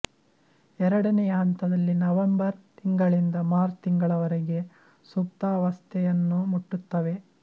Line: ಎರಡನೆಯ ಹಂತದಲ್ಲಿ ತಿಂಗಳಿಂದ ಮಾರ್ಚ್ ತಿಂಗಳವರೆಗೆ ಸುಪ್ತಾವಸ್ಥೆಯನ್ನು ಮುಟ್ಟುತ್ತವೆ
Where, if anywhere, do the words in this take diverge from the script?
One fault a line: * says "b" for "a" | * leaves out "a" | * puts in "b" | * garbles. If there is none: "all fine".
* puts in "ನವೆಂಬರ್"